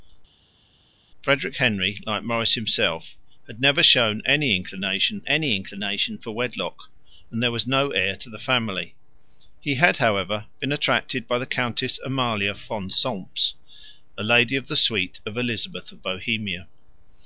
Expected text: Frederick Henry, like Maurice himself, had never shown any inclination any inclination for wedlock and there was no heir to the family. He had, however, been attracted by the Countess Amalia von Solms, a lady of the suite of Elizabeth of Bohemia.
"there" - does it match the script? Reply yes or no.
yes